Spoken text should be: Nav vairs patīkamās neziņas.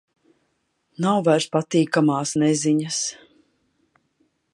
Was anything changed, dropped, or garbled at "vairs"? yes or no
no